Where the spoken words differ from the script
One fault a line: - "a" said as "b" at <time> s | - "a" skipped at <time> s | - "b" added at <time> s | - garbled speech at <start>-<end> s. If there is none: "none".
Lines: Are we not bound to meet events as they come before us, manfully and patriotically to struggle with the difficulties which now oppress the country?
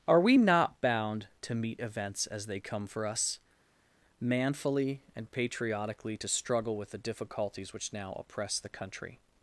- "before" said as "for" at 2.9 s